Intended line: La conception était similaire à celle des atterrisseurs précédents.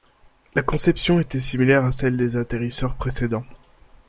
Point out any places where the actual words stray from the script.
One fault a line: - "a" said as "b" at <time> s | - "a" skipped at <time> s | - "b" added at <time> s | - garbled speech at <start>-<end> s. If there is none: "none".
none